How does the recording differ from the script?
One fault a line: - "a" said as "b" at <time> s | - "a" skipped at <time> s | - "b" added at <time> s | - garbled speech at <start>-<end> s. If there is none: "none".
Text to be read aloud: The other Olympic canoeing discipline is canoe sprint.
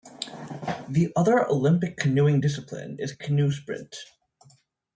none